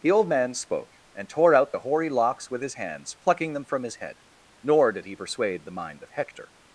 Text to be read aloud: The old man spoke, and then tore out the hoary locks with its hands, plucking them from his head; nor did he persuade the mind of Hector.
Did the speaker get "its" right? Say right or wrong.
wrong